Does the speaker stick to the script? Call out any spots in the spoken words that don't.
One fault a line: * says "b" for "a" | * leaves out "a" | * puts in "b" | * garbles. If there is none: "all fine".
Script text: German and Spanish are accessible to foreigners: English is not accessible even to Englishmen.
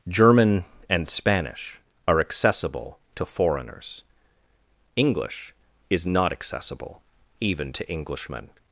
all fine